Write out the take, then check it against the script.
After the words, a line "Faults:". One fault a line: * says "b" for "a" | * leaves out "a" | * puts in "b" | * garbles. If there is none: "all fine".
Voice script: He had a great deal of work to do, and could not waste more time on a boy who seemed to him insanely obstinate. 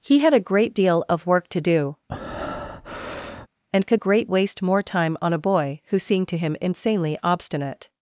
He had a great deal of work to do, and could great waste more time on a boy who seemed to him insanely obstinate.
Faults:
* says "great" for "not"